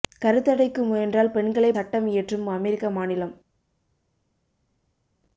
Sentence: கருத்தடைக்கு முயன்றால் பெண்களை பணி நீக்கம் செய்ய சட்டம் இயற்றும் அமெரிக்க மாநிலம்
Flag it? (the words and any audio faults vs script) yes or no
yes